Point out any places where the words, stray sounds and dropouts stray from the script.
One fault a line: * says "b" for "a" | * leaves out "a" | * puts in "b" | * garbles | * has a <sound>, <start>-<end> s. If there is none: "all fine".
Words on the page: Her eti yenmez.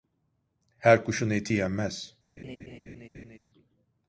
* puts in "kuşun"
* has a laugh, 2.4-3.4 s